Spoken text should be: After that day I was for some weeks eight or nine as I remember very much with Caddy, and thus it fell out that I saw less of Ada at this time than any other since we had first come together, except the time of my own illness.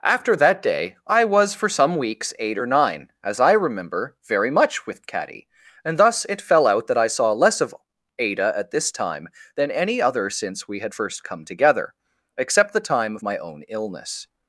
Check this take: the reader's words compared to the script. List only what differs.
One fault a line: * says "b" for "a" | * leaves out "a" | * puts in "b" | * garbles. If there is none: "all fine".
all fine